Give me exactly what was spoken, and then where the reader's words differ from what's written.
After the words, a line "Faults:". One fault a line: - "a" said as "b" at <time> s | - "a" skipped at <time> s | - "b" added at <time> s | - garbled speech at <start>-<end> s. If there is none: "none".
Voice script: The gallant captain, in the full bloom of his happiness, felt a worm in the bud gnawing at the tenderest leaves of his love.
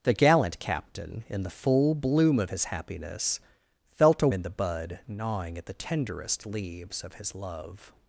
The gallant captain, in the full bloom of his happiness, felt a in the bud gnawing at the tenderest leaves of his love.
Faults:
- "worm" skipped at 4.3 s